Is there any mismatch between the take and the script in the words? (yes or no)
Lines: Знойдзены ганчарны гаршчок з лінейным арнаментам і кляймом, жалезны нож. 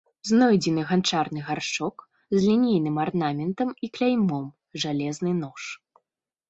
no